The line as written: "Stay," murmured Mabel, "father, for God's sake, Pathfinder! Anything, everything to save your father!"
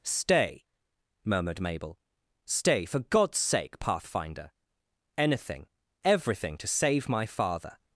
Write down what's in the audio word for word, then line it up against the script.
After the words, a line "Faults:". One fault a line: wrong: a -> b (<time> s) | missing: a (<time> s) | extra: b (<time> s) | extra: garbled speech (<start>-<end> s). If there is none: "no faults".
"Stay," murmured Mabel, "stay, for God's sake, Pathfinder! Anything, everything to save my father!"
Faults:
wrong: father -> stay (2.5 s)
wrong: your -> my (7.1 s)